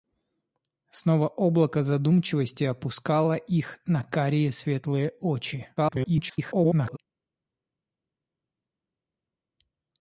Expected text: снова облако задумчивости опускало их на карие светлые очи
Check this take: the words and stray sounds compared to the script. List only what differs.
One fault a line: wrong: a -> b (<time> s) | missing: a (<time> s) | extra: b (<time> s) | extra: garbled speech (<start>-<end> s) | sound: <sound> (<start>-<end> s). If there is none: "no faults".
extra: garbled speech (5.8-7.0 s)